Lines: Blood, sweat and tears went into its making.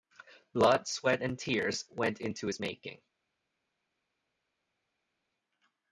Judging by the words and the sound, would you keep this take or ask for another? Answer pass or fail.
pass